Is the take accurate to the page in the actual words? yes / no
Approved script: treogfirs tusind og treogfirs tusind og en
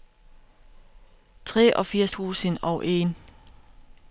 no